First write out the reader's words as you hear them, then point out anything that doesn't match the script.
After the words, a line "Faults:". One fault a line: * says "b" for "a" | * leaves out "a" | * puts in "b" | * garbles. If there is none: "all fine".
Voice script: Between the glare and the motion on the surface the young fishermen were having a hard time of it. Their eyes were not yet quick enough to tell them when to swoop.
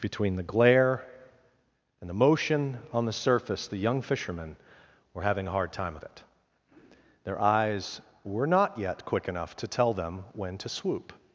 Between the glare and the motion on the surface the young fishermen were having a hard time of it. Their eyes were not yet quick enough to tell them when to swoop.
Faults:
all fine